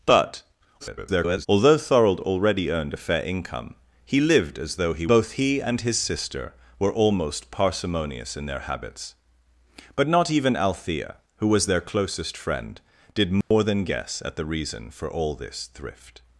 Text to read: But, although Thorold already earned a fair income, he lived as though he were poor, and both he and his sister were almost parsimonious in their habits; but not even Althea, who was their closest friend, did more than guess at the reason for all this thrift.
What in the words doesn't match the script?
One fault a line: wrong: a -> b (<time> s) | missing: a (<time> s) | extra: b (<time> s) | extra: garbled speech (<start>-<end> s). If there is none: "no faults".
extra: garbled speech (0.8-1.5 s)
missing: were poor and (5.1 s)